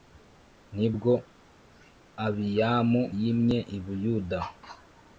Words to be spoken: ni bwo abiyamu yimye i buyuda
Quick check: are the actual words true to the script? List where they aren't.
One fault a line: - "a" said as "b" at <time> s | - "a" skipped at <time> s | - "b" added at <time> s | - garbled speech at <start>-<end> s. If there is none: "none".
none